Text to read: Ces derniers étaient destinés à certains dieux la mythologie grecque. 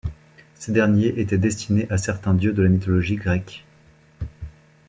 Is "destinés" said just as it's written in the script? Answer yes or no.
yes